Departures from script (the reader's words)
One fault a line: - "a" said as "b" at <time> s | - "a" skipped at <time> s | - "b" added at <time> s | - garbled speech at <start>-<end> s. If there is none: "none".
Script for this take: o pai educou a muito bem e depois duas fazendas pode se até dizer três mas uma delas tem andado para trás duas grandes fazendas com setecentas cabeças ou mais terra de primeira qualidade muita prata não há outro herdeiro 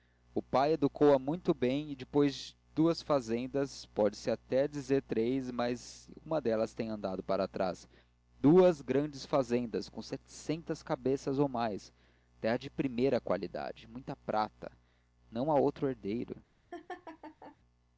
none